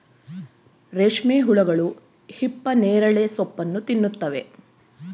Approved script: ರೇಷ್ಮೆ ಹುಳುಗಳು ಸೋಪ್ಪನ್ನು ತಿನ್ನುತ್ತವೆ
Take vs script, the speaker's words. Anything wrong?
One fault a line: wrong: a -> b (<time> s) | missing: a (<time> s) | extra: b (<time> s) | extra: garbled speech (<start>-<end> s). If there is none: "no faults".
extra: ಹಿಪ್ಪನೇರಳೆ (2.3 s)